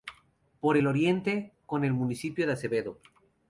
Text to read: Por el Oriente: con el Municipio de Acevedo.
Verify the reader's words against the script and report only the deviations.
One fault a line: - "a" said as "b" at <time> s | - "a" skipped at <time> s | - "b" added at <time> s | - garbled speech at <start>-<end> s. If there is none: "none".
none